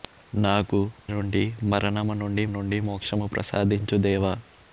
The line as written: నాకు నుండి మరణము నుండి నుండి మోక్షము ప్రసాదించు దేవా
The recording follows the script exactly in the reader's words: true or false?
true